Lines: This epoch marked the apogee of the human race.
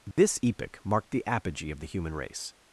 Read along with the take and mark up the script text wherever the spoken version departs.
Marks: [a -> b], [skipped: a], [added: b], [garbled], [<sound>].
This [dropout] epoch marked the apogee of the human race.